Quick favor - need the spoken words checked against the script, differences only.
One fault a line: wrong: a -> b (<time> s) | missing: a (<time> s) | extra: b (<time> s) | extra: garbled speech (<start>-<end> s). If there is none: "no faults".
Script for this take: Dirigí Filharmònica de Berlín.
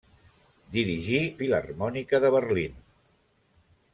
no faults